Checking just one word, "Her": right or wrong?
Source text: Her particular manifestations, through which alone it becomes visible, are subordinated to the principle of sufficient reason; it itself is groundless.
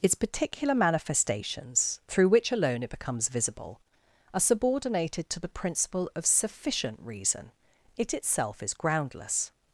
wrong